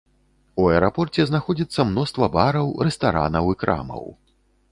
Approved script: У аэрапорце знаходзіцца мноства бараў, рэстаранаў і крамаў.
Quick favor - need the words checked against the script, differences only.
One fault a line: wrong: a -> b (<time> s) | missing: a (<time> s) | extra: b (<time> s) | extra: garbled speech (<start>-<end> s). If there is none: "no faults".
no faults